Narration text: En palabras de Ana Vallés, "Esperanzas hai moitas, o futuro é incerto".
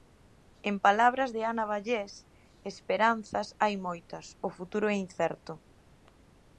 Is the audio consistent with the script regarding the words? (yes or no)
yes